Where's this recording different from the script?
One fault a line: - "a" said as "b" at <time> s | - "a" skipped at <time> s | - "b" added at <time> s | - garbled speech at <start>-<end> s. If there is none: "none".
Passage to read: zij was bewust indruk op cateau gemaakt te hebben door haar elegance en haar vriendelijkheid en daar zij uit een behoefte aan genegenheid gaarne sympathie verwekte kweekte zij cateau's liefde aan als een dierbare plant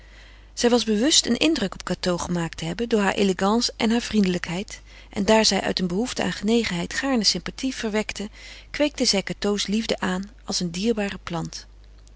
- "een" added at 1.2 s